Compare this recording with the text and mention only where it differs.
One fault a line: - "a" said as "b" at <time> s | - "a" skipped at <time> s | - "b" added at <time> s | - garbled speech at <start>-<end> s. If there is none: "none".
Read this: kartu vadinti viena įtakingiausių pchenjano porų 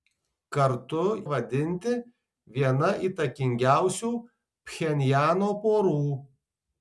none